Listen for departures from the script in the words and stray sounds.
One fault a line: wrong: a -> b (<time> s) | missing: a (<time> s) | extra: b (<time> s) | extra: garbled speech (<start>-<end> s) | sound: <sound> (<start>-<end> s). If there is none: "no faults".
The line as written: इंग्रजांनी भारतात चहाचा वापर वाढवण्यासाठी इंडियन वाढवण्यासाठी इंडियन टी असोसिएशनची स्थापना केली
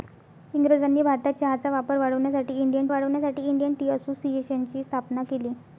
no faults